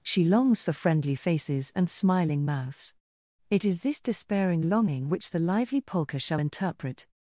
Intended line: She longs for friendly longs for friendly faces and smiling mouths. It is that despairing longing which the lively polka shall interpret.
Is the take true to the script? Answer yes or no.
no